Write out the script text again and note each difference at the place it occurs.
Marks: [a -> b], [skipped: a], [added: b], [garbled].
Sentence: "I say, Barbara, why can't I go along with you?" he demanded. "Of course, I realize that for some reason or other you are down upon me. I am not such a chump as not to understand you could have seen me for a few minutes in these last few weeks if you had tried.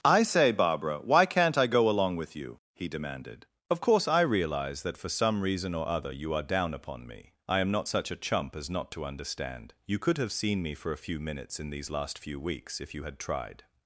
"I say, Barbara, why can't I go along with you?" he demanded. "Of course, I realize that for some reason or other you are down upon me. I am not such a chump as not to understand you could have seen me for a few minutes in these last few weeks if you had tried.